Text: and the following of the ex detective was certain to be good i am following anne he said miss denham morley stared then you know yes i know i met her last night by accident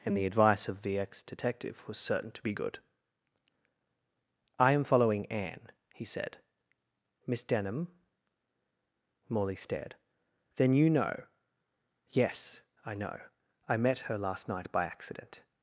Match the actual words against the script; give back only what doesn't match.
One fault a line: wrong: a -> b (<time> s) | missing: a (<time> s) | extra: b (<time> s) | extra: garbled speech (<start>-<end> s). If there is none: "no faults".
wrong: following -> advice (0.2 s)